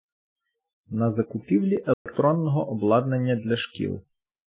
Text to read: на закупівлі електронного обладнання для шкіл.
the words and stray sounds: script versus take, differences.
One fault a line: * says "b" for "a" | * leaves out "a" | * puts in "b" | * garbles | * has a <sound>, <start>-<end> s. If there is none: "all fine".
* has a dropout, 1.9-2.1 s